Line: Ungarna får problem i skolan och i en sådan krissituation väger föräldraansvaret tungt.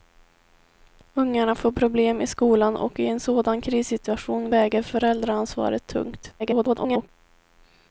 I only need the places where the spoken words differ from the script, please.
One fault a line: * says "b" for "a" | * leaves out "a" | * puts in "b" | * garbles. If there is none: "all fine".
* garbles